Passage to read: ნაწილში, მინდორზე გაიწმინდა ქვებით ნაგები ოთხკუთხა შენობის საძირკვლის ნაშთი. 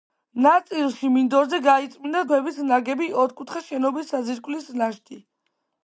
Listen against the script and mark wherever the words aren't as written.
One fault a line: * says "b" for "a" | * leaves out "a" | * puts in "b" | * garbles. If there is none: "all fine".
all fine